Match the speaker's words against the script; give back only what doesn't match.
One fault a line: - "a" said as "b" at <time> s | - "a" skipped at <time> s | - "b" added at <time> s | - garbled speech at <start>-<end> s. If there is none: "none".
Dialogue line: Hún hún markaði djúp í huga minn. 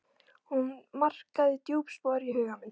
- "hún" skipped at 0.7 s
- "spor" added at 2.0 s